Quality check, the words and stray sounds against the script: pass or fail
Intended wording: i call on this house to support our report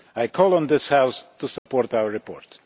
fail